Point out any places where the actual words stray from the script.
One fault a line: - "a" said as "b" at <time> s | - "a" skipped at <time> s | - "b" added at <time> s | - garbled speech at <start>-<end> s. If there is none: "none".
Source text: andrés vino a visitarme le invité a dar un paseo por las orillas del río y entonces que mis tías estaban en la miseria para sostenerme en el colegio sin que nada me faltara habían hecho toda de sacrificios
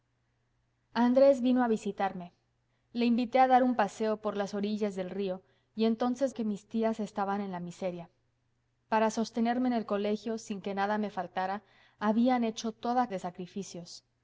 none